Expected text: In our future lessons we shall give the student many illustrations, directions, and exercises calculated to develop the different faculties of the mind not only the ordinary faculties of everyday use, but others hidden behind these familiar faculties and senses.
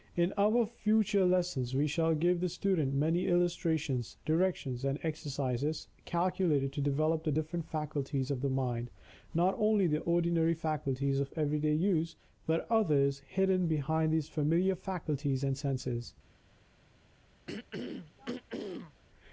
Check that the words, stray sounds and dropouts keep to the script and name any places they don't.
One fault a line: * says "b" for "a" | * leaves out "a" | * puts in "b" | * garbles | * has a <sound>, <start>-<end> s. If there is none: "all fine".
* has a throat clearing, 17.5-19.0 s